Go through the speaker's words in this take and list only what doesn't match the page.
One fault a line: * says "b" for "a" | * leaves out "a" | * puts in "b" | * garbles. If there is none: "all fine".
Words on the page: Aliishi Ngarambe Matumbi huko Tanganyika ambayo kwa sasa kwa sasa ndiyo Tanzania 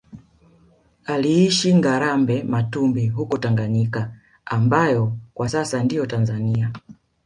* leaves out "kwa sasa"